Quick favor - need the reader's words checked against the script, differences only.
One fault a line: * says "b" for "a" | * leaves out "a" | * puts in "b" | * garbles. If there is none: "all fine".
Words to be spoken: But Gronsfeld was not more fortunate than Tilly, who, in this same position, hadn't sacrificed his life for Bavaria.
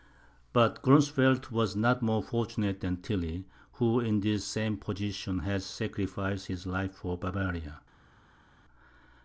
* says "had" for "hadn't"